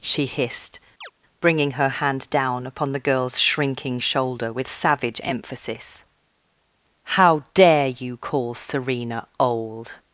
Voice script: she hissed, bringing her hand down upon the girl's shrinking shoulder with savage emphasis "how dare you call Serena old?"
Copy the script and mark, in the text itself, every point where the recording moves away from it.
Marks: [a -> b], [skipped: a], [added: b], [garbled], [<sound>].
she hissed, [chirp] bringing her hand down upon the girl's shrinking shoulder with savage emphasis "how dare you call Serena old?"